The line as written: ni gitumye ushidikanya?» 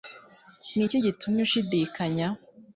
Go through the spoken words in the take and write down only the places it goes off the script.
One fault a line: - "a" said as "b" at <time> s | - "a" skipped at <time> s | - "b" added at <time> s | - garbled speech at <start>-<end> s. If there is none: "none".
- "iki" added at 0.8 s